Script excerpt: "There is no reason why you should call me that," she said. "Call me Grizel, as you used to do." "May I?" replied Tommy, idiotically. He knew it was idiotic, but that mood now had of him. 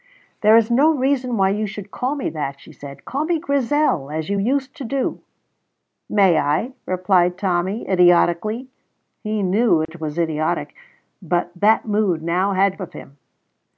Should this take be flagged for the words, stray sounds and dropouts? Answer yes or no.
yes